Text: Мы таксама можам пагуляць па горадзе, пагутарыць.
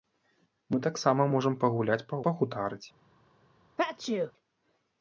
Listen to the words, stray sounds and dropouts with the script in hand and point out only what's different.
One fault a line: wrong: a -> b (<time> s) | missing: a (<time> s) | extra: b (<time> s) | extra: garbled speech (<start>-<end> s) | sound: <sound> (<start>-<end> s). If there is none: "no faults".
missing: горадзе (2.2 s)
sound: sneeze (3.8-4.3 s)